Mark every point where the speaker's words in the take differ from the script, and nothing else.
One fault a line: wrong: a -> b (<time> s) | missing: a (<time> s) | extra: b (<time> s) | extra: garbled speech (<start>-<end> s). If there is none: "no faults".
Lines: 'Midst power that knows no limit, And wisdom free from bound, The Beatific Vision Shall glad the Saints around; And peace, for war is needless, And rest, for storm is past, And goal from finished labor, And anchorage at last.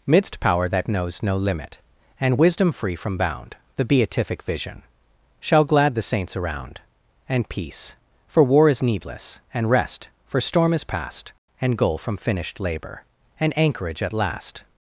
no faults